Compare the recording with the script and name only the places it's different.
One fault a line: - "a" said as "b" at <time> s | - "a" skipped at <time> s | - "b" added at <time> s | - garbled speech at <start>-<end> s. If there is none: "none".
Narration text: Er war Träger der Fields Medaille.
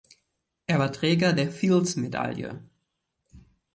none